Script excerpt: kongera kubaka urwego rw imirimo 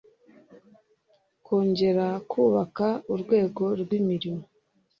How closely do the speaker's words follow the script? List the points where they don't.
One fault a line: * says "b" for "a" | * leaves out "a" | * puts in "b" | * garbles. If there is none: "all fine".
all fine